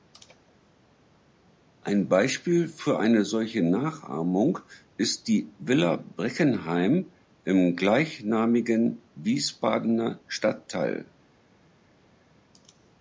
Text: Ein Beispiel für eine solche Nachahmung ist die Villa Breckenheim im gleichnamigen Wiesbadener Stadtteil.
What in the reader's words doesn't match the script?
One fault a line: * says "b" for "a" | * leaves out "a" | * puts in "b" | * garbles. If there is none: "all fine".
all fine